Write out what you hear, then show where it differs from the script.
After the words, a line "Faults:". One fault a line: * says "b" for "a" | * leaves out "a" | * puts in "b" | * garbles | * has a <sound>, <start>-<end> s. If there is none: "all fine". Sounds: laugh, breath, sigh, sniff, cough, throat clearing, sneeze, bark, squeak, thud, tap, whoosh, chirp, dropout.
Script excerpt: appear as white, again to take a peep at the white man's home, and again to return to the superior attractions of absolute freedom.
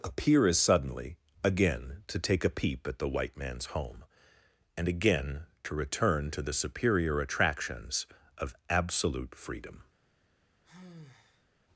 appear as suddenly, again to take a peep at the white man's home, and again to return to the superior attractions of absolute freedom.
Faults:
* says "suddenly" for "white"
* has a sigh, 10.6-11.5 s